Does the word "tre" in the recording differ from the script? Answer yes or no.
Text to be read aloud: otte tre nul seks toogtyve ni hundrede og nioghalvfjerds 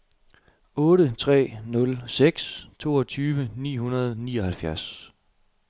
no